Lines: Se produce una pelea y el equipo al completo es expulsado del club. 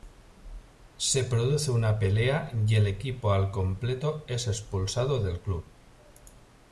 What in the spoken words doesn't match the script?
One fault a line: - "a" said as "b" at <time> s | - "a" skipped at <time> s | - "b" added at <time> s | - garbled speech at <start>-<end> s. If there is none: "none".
none